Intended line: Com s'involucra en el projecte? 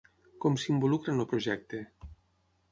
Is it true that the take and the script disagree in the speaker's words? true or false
false